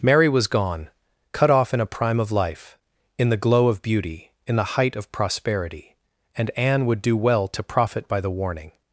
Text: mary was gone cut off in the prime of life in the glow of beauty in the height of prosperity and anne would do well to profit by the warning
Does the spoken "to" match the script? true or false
true